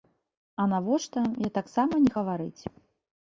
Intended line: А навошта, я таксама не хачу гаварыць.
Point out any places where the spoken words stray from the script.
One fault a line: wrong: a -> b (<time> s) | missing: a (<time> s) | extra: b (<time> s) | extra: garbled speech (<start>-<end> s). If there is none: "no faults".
missing: хачу (2.2 s)